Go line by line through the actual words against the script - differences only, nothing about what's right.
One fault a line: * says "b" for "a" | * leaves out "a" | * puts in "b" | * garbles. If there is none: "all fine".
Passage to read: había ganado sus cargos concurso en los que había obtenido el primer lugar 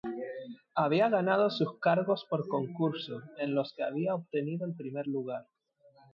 * puts in "por"